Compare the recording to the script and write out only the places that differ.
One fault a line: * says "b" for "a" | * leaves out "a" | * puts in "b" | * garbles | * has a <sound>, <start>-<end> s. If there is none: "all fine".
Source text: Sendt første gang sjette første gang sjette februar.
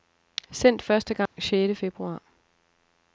* has a dropout, 1.3-1.4 s
* leaves out "første gang sjette"